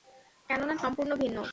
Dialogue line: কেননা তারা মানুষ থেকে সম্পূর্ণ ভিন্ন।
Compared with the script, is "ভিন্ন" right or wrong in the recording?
right